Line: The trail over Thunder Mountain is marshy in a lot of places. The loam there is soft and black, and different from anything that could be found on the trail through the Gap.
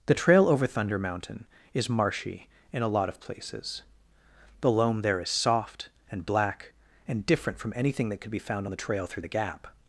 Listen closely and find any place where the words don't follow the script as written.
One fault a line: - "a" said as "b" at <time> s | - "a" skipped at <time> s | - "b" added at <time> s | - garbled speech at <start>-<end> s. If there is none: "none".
none